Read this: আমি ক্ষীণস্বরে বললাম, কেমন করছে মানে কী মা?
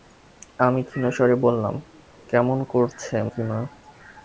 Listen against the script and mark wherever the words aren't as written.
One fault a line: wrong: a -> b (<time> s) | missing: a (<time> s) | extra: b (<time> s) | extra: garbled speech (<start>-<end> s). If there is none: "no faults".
missing: মানে (3.1 s)